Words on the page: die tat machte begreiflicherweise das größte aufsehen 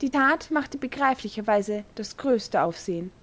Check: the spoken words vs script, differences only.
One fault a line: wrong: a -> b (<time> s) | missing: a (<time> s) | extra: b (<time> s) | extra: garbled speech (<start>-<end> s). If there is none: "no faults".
no faults